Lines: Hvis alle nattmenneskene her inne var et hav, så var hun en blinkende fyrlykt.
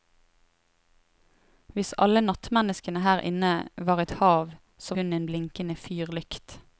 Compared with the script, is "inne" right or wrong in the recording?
right